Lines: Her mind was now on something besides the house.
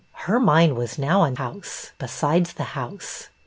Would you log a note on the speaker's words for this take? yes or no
yes